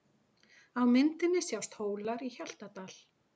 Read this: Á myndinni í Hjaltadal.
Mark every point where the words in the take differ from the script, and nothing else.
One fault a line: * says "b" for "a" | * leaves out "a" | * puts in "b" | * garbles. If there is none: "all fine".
* puts in "sjást Hólar"